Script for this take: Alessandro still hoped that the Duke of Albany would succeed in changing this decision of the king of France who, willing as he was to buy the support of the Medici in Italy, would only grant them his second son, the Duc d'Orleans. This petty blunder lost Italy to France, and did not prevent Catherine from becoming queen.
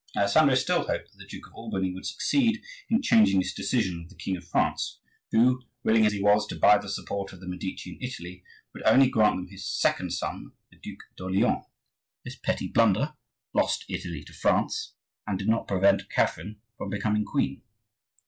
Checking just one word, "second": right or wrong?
right